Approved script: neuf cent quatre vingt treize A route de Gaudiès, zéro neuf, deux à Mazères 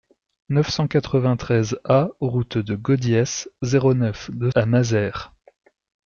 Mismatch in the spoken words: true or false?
false